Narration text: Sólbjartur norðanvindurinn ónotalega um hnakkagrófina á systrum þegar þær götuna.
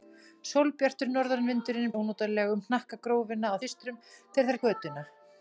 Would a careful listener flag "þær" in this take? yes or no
no